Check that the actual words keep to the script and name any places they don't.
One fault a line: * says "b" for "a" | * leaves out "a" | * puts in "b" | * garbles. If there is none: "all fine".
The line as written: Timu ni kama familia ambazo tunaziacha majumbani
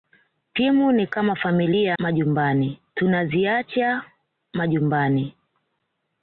* says "majumbani" for "ambazo"